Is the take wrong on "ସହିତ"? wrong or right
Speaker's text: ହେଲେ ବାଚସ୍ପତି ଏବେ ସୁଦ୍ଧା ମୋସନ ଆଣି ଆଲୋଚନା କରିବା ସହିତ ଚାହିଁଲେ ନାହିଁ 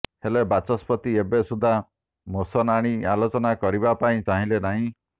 wrong